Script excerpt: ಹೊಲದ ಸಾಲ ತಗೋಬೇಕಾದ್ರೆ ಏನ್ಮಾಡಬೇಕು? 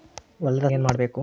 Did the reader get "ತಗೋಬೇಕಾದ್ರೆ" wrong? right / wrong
wrong